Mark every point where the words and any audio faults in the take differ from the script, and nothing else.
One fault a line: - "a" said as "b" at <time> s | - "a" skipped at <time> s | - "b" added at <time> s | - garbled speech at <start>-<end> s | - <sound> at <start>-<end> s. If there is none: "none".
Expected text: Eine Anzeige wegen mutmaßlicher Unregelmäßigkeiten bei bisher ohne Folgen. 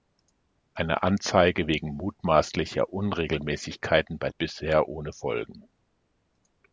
none